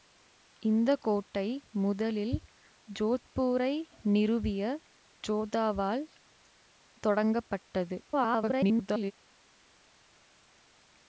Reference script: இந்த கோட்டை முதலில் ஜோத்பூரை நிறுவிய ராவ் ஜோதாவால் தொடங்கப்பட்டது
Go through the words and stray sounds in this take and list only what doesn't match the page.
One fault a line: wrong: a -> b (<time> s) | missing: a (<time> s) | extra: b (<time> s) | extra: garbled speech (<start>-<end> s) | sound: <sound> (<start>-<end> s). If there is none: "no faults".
missing: ராவ் (4.6 s)
extra: garbled speech (8.1-9.1 s)